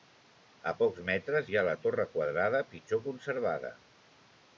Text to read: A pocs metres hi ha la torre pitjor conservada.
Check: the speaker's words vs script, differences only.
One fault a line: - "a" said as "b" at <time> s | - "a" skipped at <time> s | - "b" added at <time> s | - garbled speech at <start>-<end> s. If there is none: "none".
- "quadrada" added at 2.1 s